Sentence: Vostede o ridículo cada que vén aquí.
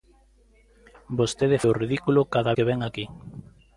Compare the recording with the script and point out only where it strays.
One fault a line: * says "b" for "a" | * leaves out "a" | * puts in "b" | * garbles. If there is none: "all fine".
all fine